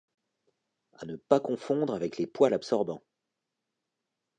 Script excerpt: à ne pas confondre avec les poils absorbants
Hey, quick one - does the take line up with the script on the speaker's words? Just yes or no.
yes